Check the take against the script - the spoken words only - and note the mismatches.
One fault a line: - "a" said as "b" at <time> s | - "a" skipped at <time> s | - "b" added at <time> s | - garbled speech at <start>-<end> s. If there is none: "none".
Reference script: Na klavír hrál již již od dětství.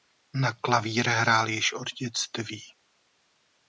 - "již" skipped at 1.7 s